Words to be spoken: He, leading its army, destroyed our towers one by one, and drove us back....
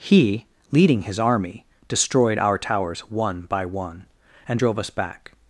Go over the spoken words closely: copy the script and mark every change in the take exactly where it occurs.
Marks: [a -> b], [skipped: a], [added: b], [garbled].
He, leading [its -> his] army, destroyed our towers one by one, and drove us back....